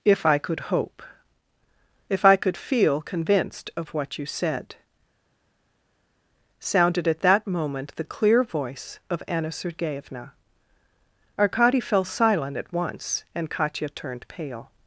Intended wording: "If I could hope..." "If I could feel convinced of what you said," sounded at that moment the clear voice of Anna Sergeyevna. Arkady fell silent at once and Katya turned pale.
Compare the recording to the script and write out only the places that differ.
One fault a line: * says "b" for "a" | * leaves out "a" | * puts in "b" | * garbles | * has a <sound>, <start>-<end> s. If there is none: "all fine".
all fine